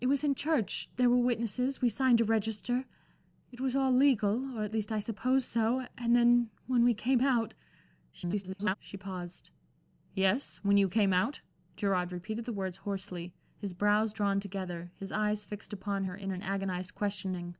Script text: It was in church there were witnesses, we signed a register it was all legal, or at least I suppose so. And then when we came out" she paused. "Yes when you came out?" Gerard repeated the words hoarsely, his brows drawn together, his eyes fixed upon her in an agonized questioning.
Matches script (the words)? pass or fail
fail